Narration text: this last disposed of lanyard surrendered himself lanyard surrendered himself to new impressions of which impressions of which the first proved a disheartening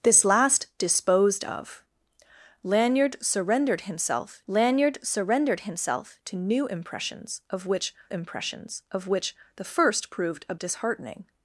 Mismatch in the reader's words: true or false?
false